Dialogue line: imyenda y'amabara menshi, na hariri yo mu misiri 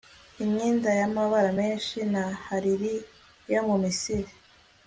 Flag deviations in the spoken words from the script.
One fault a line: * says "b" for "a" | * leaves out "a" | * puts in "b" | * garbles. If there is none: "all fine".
all fine